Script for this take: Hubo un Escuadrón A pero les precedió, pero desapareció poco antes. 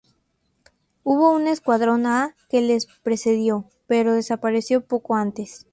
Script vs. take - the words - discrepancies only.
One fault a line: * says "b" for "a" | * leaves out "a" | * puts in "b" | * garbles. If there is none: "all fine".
* says "que" for "pero"